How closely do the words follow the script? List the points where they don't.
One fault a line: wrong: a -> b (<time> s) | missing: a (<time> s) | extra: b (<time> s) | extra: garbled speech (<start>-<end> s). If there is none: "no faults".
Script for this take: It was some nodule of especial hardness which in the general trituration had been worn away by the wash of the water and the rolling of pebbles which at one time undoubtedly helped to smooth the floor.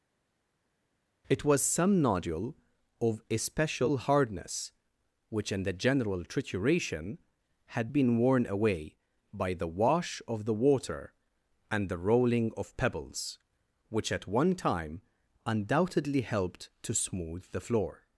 no faults